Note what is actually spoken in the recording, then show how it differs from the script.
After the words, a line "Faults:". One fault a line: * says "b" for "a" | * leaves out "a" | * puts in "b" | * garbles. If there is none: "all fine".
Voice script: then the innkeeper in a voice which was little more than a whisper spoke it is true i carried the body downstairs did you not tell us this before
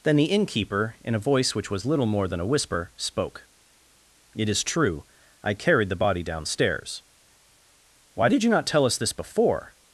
then the innkeeper in a voice which was little more than a whisper spoke it is true i carried the body downstairs why did you not tell us this before
Faults:
* puts in "why"